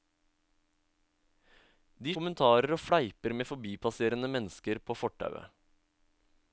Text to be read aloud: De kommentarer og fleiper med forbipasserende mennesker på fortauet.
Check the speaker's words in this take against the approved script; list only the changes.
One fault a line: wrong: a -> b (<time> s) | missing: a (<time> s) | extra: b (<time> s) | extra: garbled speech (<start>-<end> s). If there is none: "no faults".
no faults